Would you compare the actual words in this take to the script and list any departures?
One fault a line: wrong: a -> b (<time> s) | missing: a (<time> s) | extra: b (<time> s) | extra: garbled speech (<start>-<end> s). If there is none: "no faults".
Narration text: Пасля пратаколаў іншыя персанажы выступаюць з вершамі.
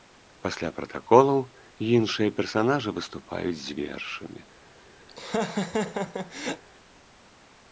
no faults